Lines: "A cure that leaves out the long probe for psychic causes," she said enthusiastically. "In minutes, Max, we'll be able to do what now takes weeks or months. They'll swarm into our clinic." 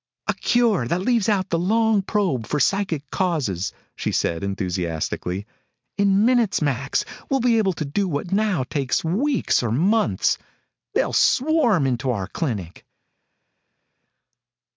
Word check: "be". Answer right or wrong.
right